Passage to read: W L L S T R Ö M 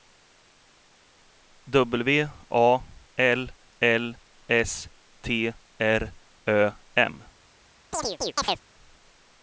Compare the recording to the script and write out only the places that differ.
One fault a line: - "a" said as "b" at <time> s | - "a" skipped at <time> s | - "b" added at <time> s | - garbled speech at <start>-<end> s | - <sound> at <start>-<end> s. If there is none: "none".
- "A" added at 2.5 s
- chirp at 7.9-8.6 s